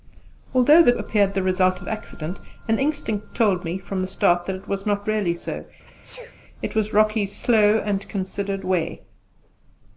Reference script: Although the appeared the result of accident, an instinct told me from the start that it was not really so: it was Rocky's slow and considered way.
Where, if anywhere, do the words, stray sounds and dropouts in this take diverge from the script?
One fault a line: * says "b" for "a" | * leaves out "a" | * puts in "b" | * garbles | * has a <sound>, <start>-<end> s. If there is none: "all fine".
* has a sneeze, 5.9-6.4 s